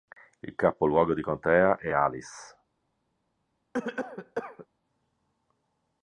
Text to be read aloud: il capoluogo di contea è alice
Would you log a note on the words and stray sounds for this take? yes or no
yes